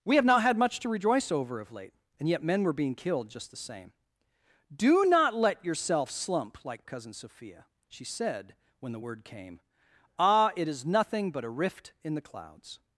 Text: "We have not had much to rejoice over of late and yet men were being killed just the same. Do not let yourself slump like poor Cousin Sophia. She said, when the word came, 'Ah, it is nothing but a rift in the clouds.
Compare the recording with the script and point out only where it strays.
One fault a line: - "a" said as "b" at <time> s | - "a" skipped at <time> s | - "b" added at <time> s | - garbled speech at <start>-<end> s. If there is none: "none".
- "poor" skipped at 6.8 s